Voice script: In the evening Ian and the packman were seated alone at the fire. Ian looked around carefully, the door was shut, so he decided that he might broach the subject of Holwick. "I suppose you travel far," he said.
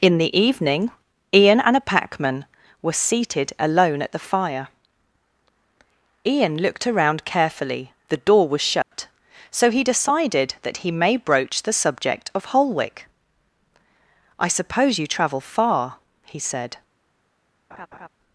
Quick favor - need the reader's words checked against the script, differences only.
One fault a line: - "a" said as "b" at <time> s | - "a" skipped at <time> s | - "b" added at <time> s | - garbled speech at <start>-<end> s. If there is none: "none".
- "the" said as "a" at 1.8 s
- "might" said as "may" at 10.9 s